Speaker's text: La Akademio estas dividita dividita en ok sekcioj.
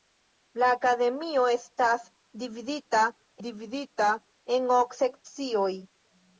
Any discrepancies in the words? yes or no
no